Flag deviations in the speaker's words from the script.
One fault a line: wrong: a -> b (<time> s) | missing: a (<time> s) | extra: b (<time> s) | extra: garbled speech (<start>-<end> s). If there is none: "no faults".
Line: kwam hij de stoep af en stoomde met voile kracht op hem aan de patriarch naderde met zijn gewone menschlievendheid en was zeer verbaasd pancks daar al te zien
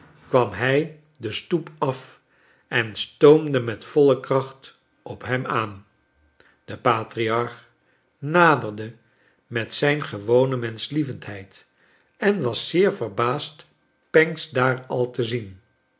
no faults